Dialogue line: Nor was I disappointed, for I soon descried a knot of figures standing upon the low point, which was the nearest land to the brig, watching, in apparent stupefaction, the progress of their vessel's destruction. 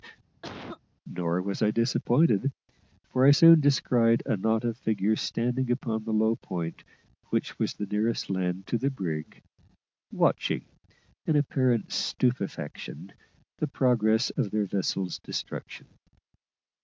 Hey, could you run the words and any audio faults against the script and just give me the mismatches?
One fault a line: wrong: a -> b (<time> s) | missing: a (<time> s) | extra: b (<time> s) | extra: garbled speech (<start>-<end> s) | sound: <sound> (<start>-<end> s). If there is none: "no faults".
sound: cough (0.4-0.8 s)